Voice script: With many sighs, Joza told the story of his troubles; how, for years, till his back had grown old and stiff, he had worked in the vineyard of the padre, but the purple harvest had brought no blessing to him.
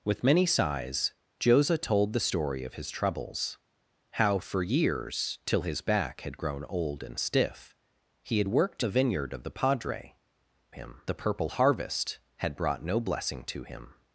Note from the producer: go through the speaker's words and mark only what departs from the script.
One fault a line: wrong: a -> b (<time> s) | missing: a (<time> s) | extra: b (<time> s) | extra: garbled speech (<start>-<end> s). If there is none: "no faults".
missing: in (8.9 s)
wrong: but -> him (10.7 s)